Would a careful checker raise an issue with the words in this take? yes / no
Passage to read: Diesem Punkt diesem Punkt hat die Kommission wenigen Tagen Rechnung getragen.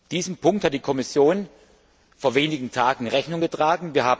yes